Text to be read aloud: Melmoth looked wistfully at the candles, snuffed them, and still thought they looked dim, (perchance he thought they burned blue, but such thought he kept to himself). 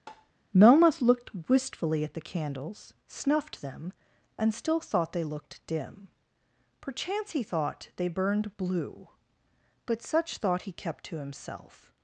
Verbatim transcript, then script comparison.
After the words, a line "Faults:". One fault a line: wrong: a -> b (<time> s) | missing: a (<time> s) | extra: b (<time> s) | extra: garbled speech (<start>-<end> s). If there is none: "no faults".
Melmoth looked wistfully at the candles, snuffed them, and still thought they looked dim, (perchance he thought they burned blue, but such thought he kept to himself).
Faults:
no faults